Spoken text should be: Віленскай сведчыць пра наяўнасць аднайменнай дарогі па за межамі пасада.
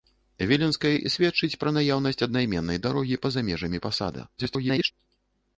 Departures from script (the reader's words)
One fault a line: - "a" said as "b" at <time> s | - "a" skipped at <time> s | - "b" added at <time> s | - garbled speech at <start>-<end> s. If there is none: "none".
- garbled speech at 4.4-4.9 s